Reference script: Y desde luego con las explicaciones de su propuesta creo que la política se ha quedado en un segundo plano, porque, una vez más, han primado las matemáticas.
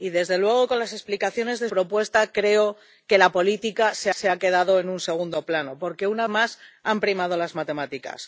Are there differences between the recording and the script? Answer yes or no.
yes